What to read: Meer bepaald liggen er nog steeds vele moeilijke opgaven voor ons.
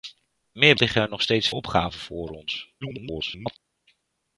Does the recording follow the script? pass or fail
fail